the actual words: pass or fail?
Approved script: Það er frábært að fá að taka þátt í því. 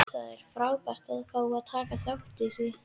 pass